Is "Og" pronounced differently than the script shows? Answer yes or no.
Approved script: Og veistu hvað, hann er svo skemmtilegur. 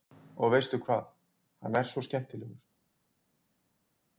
no